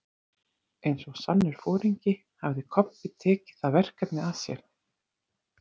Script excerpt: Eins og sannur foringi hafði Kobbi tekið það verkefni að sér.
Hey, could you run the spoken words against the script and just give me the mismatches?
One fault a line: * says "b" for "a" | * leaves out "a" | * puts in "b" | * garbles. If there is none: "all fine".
all fine